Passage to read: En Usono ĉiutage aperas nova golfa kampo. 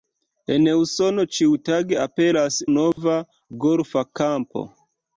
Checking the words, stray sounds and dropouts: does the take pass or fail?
fail